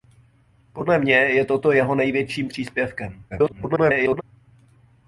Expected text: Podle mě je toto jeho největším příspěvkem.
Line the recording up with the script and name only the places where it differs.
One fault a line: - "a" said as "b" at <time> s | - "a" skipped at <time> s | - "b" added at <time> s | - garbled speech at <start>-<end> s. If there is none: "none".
- garbled speech at 3.3-4.2 s